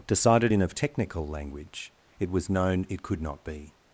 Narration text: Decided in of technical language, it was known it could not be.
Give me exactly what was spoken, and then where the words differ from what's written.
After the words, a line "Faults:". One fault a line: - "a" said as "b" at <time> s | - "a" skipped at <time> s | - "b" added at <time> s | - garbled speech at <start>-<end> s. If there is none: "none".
Decided in of technical language, it was known it could not be.
Faults:
none